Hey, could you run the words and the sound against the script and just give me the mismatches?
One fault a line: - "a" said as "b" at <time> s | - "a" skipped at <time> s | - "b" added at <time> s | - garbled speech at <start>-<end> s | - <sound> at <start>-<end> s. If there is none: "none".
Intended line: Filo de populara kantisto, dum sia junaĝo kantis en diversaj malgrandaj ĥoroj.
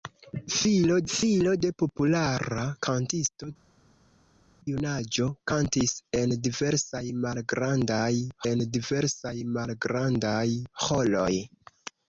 - "filo" added at 1.1 s
- "dum sia junaĝo kantis" said as "junaĝo kantis en diversaj malgrandaj" at 4.7 s